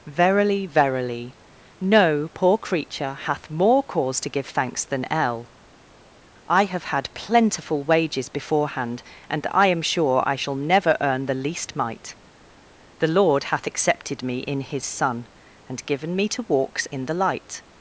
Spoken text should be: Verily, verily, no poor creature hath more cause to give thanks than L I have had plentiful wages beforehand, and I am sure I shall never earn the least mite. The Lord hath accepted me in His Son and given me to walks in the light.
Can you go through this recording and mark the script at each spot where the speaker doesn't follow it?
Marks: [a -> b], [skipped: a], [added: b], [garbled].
Verily, verily, no poor creature hath more cause to give thanks than L I have had plentiful wages beforehand, and I am sure I shall never earn the least mite. The Lord hath accepted me in His Son and given me to walks in the light.